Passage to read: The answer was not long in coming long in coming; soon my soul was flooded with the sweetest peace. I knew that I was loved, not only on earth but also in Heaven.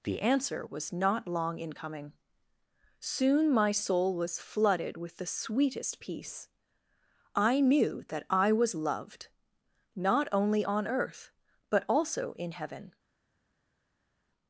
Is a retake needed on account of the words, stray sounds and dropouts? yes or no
yes